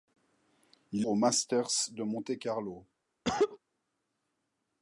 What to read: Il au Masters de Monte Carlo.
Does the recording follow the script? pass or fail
pass